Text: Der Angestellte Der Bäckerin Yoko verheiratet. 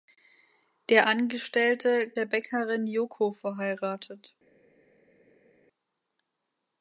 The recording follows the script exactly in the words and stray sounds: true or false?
true